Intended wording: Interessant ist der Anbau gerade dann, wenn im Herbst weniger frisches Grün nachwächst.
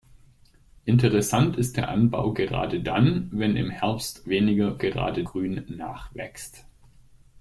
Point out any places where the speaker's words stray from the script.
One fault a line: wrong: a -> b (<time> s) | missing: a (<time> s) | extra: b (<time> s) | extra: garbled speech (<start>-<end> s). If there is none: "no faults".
wrong: frisches -> gerade (4.8 s)